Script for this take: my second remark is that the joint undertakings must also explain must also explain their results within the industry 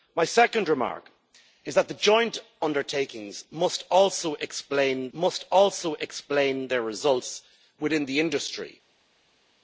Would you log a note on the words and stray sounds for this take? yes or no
no